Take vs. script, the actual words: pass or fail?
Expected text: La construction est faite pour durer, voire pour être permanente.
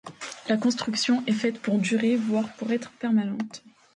pass